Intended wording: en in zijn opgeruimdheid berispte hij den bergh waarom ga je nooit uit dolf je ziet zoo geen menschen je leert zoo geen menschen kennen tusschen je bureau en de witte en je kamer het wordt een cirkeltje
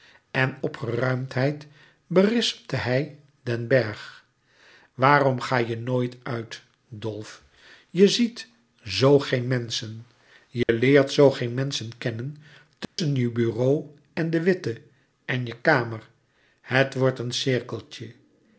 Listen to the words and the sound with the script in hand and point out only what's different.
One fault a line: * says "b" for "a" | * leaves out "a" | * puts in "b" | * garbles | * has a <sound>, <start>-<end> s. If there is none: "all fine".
* leaves out "in zijn"
* has a dropout, 10.6-10.7 s
* has a dropout, 12.8-13.0 s